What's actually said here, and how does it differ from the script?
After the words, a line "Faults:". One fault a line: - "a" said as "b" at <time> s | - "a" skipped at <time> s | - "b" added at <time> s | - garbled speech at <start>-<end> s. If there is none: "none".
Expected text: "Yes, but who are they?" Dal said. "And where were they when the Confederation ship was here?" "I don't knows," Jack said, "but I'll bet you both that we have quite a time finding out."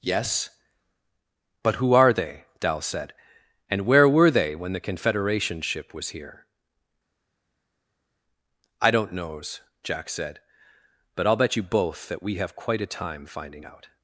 "Yes, but who are they?" Dal said. "And where were they when the Confederation ship was here?" "I don't knows," Jack said, "but I'll bet you both that we have quite a time finding out."
Faults:
none